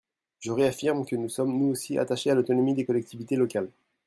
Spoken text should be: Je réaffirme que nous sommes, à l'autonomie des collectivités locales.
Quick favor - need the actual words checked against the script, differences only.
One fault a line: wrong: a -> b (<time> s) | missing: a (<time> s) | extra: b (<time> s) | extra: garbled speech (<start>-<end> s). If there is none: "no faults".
extra: nous aussi attachés (1.6 s)